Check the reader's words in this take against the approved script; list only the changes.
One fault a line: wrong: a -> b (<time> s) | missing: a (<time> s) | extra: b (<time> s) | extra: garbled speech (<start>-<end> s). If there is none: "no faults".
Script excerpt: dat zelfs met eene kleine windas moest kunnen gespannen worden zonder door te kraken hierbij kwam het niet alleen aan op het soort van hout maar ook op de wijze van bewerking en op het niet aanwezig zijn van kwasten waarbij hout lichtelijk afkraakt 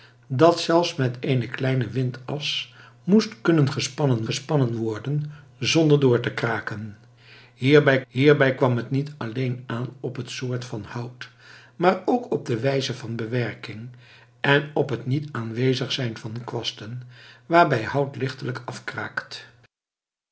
extra: gespannen (4.2 s)
extra: hierbij (8.1 s)